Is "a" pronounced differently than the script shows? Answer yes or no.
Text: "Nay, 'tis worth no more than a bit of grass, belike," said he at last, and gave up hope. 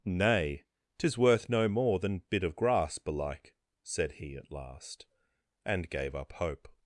yes